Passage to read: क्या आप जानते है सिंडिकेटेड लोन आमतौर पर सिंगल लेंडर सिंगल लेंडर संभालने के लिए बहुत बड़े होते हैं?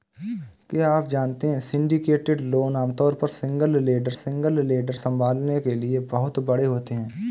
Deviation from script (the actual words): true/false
false